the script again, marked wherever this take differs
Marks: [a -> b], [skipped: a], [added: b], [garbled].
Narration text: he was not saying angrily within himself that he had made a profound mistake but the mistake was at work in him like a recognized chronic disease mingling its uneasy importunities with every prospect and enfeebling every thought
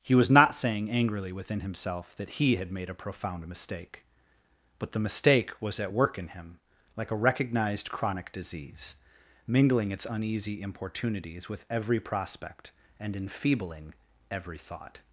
he was not saying angrily within himself that he had made a profound mistake but the mistake was at work in him like a recognized chronic disease mingling its uneasy importunities with every prospect and enfeebling every thought